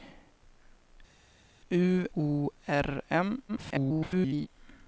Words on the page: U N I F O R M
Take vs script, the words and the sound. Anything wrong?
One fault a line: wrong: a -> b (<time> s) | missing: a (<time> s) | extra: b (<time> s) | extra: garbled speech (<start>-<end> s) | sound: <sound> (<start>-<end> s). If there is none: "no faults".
missing: N I F (2.1 s)
extra: garbled speech (3.5-4.5 s)